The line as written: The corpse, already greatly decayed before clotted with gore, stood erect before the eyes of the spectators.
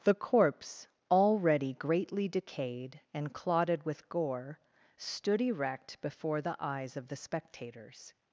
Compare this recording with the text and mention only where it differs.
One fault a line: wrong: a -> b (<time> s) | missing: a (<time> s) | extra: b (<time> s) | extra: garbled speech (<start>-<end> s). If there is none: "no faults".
wrong: before -> and (3.1 s)